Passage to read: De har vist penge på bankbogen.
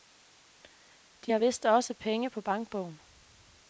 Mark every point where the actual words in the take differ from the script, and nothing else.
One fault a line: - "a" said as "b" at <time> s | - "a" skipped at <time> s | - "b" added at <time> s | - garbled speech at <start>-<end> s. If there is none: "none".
- "også" added at 1.6 s